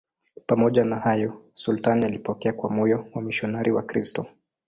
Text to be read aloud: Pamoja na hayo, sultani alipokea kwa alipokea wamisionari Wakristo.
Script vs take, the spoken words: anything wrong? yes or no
yes